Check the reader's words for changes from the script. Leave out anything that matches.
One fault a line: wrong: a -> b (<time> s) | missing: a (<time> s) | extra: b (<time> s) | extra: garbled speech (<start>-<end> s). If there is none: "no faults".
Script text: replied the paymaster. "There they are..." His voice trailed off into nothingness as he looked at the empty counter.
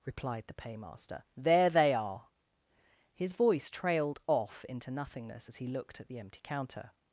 no faults